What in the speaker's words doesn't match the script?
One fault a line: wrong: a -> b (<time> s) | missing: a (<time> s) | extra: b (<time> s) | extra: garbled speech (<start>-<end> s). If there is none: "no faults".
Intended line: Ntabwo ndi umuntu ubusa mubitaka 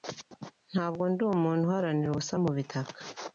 extra: uharanira (1.6 s)